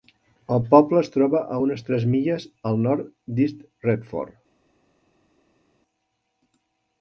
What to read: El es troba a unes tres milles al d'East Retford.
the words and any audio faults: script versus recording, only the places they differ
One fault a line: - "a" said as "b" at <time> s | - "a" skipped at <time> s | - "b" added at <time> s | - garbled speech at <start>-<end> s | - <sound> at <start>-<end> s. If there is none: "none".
- "poble" added at 0.7 s
- "nord" added at 2.9 s